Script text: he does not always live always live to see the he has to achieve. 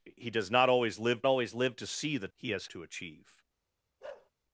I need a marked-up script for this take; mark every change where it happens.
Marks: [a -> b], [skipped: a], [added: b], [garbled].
he does not always live always live to see the he has to achieve.